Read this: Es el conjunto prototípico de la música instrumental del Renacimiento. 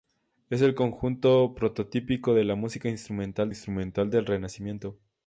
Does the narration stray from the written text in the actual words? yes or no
yes